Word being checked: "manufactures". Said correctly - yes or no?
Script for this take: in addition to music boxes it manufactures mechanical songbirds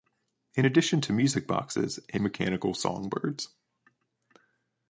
no